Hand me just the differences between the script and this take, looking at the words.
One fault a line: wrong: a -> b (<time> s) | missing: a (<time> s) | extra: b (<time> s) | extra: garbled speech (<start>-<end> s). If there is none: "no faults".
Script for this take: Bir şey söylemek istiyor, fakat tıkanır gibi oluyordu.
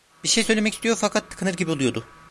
no faults